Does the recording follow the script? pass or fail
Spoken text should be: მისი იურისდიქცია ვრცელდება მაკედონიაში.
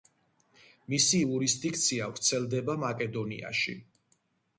pass